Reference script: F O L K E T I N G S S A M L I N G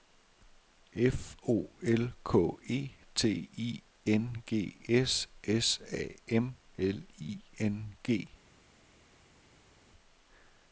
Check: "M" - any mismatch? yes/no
no